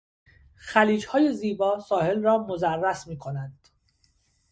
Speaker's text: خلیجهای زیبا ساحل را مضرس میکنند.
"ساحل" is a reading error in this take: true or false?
false